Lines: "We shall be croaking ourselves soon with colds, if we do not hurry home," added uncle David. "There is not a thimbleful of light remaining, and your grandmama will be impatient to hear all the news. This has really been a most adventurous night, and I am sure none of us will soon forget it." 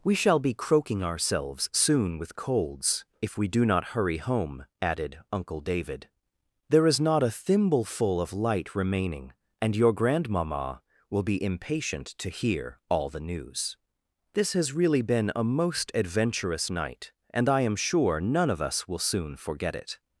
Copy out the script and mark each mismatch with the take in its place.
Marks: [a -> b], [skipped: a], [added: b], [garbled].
"We shall be croaking ourselves soon with colds, if we do not hurry home," added uncle David. "There is not a thimbleful of light remaining, and your grandmama will be impatient to hear all the news. This has really been a most adventurous night, and I am sure none of us will soon forget it."